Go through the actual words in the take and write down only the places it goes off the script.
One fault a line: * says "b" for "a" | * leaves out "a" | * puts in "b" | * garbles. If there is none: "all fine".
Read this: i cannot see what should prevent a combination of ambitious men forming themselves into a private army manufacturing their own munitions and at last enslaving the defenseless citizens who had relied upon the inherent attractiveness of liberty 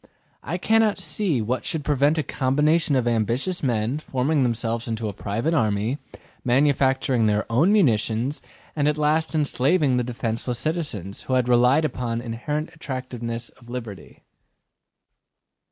all fine